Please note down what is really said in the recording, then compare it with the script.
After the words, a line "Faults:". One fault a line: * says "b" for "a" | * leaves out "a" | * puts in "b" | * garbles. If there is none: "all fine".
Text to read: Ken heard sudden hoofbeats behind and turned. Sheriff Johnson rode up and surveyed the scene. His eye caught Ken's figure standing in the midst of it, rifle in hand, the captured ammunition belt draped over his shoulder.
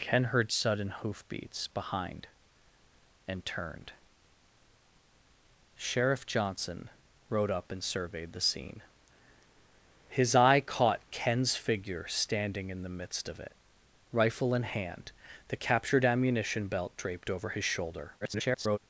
Ken heard sudden hoofbeats behind and turned. Sheriff Johnson rode up and surveyed the scene. His eye caught Ken's figure standing in the midst of it, rifle in hand, the captured ammunition belt draped over his shoulder. [garbled]
Faults:
* garbles